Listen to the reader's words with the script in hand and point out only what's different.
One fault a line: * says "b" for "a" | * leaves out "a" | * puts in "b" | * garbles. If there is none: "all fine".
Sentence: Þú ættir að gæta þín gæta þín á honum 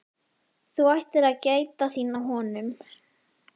* leaves out "gæta þín"